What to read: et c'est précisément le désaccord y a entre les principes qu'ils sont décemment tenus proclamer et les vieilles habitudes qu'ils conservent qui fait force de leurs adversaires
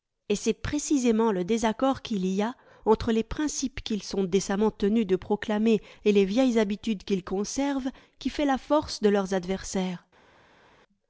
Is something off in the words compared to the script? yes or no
yes